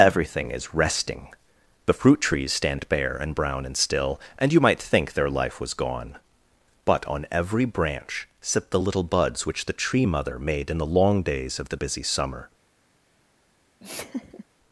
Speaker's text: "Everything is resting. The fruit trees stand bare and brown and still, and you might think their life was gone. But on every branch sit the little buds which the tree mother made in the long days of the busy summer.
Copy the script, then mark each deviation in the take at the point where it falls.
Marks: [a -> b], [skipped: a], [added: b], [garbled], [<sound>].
"Everything is resting. The fruit trees stand bare and brown and still, and you might think their life was gone. But on every branch sit the little buds which the tree mother made in the long days of the busy summer. [laugh]